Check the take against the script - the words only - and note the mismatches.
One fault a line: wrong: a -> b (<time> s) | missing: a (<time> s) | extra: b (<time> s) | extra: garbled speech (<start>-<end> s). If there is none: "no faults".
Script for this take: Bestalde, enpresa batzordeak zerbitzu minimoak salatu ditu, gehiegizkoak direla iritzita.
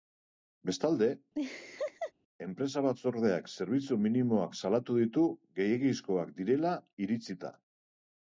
no faults